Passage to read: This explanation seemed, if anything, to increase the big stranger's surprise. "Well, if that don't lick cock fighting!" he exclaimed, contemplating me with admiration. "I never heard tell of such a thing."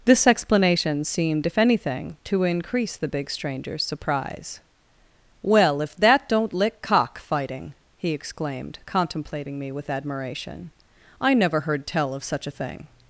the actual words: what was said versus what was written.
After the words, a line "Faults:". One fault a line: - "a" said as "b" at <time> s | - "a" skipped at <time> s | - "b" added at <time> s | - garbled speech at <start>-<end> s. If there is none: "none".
This explanation seemed, if anything, to increase the big stranger's surprise. "Well, if that don't lick cock fighting!" he exclaimed, contemplating me with admiration. "I never heard tell of such a thing."
Faults:
none